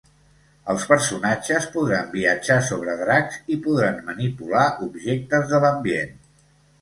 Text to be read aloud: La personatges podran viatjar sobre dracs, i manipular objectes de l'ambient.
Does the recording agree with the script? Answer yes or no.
no